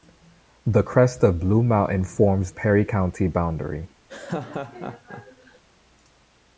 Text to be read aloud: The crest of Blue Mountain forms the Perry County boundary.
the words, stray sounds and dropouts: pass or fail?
fail